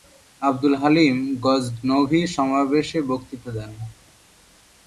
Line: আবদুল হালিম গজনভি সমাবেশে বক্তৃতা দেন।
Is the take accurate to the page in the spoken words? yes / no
yes